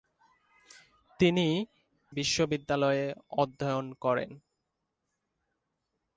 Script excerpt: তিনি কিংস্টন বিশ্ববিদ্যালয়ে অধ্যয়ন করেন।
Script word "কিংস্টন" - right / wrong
wrong